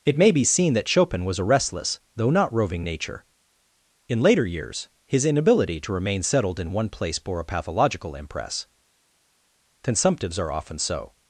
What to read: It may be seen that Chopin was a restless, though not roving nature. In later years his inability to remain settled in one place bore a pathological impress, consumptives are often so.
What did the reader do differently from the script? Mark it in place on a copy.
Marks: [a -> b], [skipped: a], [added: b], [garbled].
It may be seen that Chopin was a restless, though not roving nature. In later years his inability to remain settled in one place bore a pathological impress, consumptives are often so.